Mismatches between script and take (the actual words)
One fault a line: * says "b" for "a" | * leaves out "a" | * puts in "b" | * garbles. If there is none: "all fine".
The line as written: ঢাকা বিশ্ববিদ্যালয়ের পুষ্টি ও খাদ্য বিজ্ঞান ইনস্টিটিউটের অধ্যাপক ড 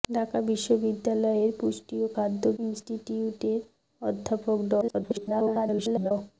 * leaves out "বিজ্ঞান"
* garbles